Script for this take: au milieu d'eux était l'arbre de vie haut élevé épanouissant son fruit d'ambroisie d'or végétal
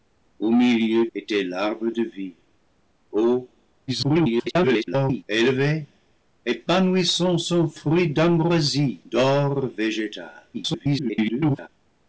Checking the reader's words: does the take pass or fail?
fail